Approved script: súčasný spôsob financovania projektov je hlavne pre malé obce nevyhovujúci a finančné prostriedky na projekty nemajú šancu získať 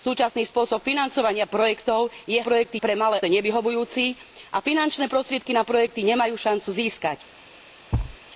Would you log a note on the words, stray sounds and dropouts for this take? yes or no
yes